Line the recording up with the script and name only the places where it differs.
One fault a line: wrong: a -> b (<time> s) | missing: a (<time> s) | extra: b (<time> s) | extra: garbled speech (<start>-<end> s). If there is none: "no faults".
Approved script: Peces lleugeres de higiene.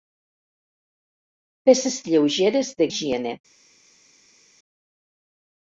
no faults